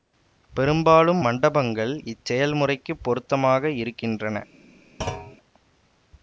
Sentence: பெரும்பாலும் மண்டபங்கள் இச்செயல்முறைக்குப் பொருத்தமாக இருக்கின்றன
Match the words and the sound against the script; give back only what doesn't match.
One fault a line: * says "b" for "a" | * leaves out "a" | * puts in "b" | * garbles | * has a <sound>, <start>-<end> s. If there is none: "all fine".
* has a thud, 5.0-5.4 s